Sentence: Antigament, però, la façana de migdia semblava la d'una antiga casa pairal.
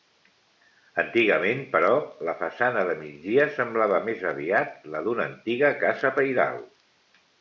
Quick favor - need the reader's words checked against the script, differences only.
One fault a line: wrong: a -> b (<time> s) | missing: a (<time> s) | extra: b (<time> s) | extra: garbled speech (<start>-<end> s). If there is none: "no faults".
extra: més aviat (4.1 s)